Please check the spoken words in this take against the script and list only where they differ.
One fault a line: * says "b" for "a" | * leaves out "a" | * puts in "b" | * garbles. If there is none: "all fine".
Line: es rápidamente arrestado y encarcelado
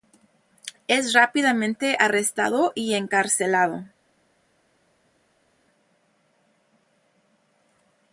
all fine